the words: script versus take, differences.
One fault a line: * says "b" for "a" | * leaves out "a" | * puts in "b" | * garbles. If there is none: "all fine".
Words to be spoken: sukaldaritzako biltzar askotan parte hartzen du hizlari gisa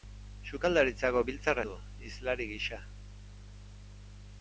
* leaves out "askotan parte hartzen"